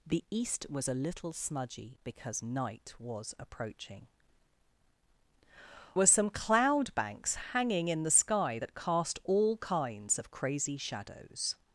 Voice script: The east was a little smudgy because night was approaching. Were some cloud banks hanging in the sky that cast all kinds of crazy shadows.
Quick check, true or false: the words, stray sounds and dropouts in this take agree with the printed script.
true